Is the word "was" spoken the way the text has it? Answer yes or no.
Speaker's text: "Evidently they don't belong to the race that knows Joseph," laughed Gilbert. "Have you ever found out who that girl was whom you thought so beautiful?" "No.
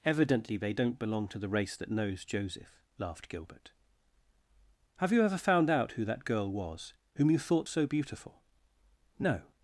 yes